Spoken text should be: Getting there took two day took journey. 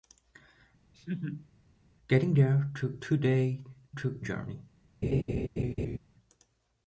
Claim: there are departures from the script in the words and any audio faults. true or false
true